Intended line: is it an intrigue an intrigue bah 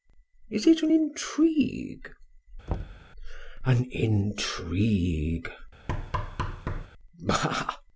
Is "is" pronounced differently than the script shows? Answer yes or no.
no